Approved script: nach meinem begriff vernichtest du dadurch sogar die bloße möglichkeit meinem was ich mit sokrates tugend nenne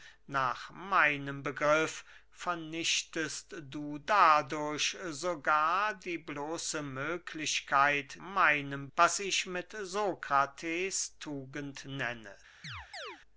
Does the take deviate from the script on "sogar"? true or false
false